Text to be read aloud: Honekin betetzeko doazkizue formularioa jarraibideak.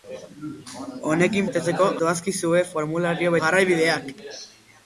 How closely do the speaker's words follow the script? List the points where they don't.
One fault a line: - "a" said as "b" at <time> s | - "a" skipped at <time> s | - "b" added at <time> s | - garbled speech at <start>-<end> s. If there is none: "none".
none